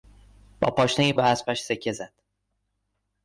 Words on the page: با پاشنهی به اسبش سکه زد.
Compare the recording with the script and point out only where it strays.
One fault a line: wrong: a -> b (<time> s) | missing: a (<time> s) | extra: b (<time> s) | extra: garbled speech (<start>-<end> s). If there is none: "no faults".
no faults